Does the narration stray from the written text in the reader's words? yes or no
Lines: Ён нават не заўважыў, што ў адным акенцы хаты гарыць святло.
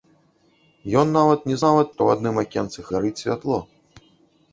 yes